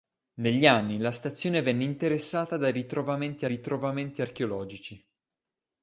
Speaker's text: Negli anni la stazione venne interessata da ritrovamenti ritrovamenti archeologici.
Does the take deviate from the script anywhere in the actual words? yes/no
no